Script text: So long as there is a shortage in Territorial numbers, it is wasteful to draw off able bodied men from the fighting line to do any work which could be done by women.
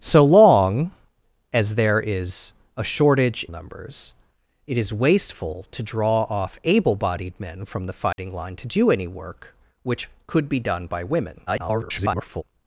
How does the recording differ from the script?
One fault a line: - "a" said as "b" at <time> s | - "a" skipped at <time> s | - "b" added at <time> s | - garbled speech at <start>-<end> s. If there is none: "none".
- "in Territorial" skipped at 3.5 s
- garbled speech at 11.5-12.4 s